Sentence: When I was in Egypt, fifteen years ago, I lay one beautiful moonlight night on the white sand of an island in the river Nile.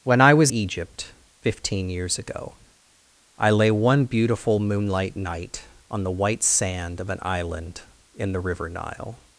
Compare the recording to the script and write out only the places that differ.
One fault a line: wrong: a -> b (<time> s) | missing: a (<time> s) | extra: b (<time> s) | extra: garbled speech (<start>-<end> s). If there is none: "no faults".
missing: in (0.5 s)